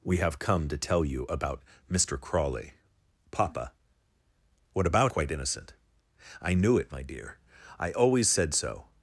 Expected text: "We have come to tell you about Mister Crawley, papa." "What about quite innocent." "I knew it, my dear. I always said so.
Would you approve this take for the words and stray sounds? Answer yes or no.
yes